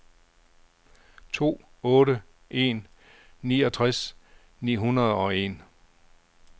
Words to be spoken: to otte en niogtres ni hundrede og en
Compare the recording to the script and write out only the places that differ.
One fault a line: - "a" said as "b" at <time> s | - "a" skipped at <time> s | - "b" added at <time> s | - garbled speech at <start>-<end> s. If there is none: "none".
none